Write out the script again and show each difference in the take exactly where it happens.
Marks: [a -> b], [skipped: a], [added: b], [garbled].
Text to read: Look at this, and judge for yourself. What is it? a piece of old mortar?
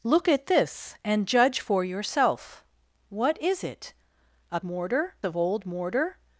Look at this, and judge for yourself. What is it? a [piece -> mortar] of old mortar?